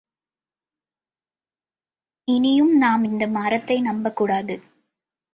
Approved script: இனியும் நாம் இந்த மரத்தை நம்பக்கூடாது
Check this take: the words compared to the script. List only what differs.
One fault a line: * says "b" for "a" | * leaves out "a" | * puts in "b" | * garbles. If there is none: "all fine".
all fine